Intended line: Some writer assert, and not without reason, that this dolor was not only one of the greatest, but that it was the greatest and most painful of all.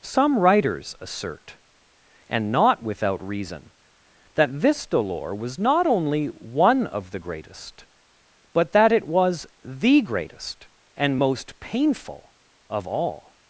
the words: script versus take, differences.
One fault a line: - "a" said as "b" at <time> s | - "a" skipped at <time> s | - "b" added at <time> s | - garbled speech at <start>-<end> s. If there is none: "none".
- "writer" said as "writers" at 0.4 s